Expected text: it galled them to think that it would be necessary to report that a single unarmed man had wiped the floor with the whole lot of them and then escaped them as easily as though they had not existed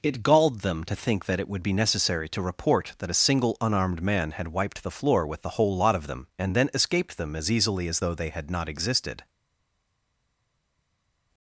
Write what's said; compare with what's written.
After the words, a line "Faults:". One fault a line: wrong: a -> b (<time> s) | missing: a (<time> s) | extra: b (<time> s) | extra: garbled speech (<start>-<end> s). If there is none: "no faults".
it galled them to think that it would be necessary to report that a single unarmed man had wiped the floor with the whole lot of them and then escaped them as easily as though they had not existed
Faults:
no faults